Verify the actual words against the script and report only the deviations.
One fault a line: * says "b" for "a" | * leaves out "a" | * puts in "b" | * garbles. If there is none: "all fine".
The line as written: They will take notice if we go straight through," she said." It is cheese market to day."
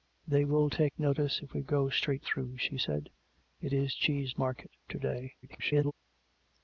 * garbles